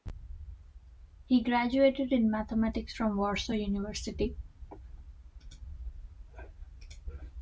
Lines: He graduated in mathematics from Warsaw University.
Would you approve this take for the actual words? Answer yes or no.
yes